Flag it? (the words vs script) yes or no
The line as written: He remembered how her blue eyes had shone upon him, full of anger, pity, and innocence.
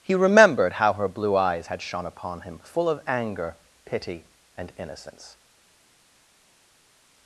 no